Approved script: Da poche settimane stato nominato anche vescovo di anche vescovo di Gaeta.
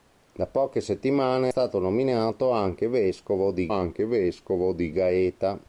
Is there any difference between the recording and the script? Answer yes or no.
no